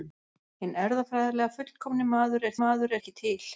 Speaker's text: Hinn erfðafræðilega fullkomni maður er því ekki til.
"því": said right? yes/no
no